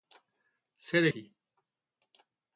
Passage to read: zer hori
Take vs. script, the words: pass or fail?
pass